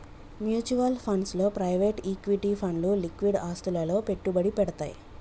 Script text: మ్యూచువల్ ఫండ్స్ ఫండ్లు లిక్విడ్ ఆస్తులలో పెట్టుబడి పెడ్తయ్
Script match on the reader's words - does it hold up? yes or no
no